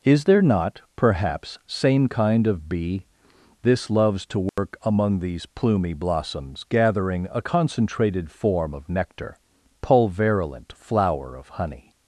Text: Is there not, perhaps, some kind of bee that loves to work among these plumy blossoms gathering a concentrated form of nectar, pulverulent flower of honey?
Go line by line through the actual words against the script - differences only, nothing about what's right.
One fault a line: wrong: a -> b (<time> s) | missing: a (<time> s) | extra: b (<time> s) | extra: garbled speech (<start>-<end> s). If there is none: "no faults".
wrong: some -> same (1.7 s)
wrong: that -> this (3.6 s)